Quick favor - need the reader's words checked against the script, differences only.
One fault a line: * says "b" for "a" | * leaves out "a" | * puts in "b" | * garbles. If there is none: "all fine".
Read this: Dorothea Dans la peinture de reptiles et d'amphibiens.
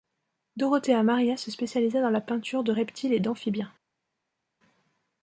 * puts in "Maria se spécialisa"